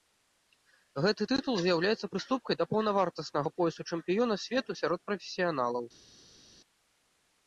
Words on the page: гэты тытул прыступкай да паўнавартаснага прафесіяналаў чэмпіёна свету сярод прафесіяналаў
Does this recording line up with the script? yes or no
no